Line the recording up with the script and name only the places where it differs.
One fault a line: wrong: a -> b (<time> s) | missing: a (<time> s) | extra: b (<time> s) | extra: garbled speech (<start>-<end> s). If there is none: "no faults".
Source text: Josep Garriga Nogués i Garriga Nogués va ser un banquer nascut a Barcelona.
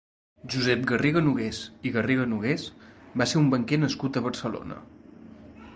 no faults